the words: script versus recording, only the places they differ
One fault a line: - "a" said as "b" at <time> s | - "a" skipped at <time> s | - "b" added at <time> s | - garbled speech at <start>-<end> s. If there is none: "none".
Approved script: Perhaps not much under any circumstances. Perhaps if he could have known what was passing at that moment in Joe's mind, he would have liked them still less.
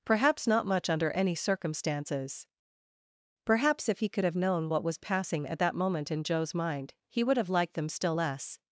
none